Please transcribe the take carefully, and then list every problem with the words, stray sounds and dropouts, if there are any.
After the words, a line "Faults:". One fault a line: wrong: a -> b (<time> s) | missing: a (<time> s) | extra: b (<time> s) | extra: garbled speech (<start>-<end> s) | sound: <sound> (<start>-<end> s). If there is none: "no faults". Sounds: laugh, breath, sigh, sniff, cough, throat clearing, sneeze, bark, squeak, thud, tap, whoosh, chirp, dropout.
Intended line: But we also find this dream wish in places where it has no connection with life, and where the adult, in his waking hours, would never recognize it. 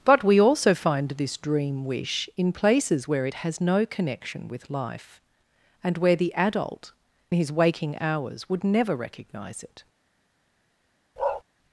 But we also find this dream wish in places where it has no connection with life, and where the adult, his waking hours, would never recognize it.
Faults:
missing: in (6.9 s)
sound: bark (11.2-11.4 s)